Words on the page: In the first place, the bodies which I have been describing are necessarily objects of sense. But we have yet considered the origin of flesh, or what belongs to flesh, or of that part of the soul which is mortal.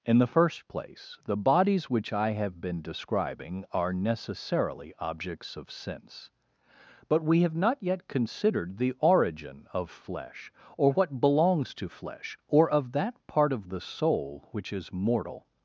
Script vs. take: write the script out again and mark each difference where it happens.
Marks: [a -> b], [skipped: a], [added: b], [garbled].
In the first place, the bodies which I have been describing are necessarily objects of sense. But we have [added: not] yet considered the origin of flesh, or what belongs to flesh, or of that part of the soul which is mortal.